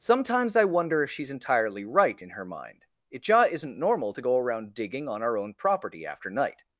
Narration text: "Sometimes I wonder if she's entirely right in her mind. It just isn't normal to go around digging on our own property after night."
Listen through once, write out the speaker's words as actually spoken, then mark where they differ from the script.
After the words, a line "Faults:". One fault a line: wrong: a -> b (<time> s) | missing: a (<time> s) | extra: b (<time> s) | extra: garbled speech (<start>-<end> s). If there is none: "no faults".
"Sometimes I wonder if she's entirely right in her mind. It just isn't normal to go around digging on our own property after night."
Faults:
no faults